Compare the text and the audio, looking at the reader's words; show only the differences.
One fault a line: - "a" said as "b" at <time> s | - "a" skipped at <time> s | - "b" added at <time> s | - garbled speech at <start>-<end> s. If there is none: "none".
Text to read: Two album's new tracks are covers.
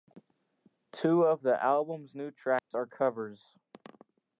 - "of the" added at 1.2 s